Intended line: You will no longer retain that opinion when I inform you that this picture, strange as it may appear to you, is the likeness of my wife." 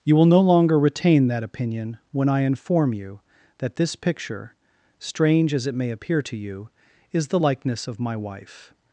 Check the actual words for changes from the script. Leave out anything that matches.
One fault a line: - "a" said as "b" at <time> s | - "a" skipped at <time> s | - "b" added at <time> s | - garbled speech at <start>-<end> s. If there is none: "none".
none